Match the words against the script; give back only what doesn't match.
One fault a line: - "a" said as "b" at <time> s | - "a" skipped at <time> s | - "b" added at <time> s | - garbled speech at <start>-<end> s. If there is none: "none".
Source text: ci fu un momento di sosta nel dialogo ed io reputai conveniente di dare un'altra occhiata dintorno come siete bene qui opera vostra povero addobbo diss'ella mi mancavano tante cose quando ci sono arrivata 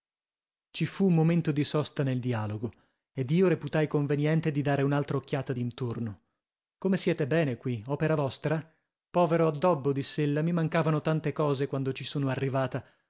none